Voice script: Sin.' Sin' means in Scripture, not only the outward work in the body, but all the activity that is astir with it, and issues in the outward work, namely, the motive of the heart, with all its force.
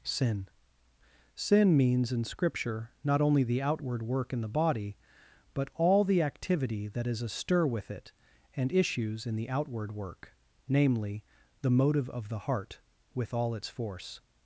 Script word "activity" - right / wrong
right